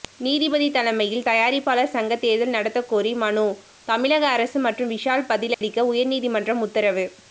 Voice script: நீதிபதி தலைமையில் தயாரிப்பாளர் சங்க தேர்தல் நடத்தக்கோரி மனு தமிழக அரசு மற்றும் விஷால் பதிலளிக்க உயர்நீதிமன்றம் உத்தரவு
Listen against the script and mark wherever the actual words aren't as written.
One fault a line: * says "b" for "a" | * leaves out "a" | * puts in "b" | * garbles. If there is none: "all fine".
all fine